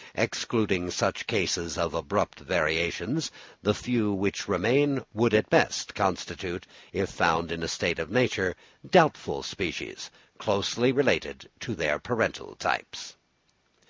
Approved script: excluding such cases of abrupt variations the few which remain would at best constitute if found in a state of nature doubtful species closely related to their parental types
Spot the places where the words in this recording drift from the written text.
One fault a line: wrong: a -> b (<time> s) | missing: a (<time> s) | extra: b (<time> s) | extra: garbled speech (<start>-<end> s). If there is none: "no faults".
no faults